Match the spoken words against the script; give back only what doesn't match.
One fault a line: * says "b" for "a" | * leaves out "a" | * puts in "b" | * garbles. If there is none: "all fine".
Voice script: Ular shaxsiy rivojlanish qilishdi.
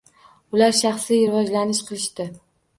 all fine